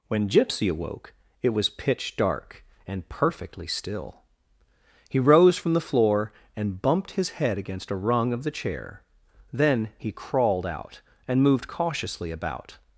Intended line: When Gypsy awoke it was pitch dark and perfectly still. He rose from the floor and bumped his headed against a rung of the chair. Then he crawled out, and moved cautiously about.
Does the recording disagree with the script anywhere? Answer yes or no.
yes